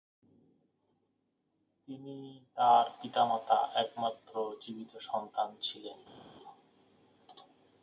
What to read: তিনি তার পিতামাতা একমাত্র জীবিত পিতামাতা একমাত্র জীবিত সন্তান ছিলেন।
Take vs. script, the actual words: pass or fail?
fail